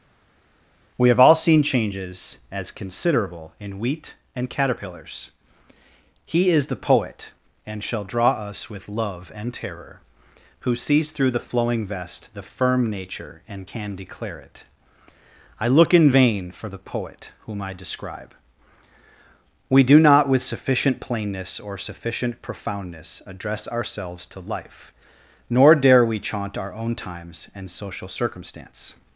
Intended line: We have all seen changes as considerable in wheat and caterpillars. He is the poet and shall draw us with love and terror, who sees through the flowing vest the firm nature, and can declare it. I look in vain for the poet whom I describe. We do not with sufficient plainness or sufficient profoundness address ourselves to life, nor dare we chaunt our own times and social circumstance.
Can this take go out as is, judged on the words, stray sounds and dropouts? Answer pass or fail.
pass